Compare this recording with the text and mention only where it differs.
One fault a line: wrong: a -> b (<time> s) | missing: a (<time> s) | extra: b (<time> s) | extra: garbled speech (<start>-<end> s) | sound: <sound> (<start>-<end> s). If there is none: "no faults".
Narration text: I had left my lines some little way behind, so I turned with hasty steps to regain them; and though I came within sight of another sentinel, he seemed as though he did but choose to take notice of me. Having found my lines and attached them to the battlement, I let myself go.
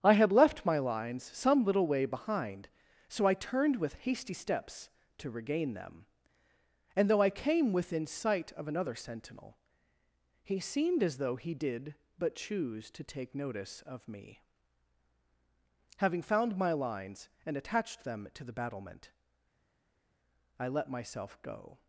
no faults